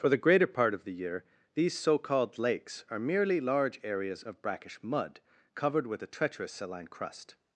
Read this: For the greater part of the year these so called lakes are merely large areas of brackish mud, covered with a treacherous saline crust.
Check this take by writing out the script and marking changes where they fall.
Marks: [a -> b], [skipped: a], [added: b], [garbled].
For the greater part of the year these so called lakes are merely large areas of brackish mud, covered with a treacherous saline crust.